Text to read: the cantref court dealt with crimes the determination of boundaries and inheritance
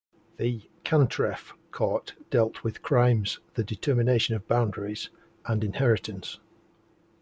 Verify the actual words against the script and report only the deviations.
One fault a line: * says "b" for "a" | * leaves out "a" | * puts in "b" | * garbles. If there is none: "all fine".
all fine